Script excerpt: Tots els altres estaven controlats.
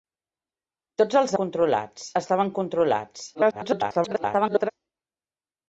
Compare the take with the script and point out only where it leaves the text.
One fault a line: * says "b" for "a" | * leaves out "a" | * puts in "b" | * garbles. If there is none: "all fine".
* says "controlats" for "altres"
* garbles